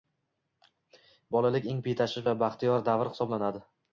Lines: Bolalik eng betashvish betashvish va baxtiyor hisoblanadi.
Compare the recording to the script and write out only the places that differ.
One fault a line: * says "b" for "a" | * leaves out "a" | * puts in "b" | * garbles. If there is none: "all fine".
* leaves out "betashvish"
* puts in "davr"